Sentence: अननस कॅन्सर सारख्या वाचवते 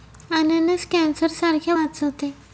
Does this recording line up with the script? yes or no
yes